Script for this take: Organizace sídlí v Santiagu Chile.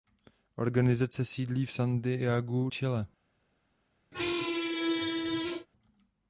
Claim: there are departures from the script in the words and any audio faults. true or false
true